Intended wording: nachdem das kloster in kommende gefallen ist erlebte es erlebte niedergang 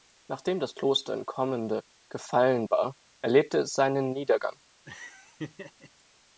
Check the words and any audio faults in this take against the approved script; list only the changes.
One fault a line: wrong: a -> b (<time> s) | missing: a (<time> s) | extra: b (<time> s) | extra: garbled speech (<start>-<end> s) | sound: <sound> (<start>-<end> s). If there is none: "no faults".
wrong: ist -> war (2.7 s)
wrong: erlebte -> seinen (3.7 s)
sound: laugh (4.8-5.9 s)